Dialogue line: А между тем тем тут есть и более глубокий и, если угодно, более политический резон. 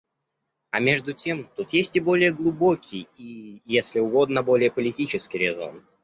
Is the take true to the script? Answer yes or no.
no